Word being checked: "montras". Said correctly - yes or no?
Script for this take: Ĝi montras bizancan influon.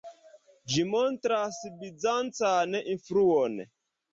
yes